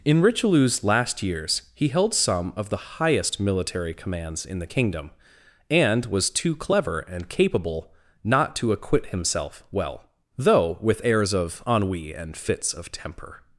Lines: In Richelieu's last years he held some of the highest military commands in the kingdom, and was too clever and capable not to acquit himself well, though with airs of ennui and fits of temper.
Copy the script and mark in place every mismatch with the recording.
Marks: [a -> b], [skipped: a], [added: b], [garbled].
In Richelieu's last years he held some of the highest military commands in the kingdom, and was too clever and capable not to acquit himself well, though with airs of ennui and fits of temper.